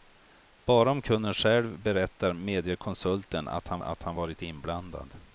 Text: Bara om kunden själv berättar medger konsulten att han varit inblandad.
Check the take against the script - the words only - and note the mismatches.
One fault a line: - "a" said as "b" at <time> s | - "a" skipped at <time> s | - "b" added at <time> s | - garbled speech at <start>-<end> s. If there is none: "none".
- "att han" added at 3.8 s